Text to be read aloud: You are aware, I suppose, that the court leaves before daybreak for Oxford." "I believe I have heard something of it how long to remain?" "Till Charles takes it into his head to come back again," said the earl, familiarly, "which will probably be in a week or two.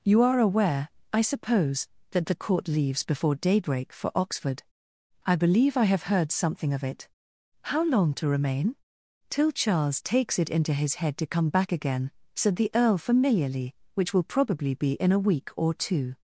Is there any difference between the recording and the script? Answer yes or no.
no